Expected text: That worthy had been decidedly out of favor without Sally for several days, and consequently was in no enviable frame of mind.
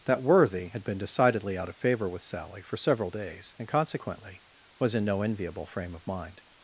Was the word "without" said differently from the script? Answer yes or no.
yes